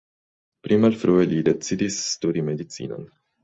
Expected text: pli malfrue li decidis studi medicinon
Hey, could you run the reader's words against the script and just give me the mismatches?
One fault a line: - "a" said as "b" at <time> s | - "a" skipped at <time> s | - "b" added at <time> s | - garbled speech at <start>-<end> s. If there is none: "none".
none